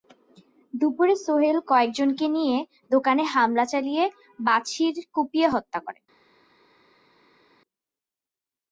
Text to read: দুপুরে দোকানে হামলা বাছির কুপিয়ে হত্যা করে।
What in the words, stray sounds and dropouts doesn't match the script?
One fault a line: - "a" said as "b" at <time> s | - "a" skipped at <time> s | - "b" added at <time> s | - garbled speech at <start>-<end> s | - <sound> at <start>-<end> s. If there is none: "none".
- "সোহেল কয়েকজনকে নিয়ে" added at 1.2 s
- "চালিয়ে" added at 3.7 s